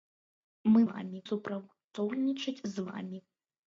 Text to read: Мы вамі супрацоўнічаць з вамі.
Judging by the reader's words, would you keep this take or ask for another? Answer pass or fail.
pass